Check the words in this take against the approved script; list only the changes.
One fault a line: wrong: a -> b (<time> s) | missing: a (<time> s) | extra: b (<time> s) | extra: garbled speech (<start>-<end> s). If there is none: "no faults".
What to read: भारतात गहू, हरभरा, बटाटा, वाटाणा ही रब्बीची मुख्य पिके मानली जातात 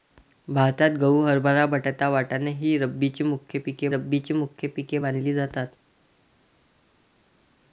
extra: रब्बीची मुख्य पिके (3.9 s)